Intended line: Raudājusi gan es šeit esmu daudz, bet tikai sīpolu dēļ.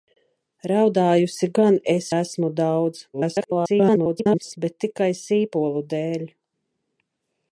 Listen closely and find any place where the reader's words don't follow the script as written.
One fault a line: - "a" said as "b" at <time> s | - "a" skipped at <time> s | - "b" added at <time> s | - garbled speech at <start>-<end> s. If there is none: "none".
- "šeit" skipped at 2.1 s
- garbled speech at 3.1-4.6 s